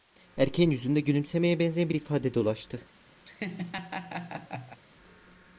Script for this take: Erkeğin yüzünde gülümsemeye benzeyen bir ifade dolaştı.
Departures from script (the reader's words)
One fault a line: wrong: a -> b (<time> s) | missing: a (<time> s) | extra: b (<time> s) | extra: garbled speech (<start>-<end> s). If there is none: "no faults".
no faults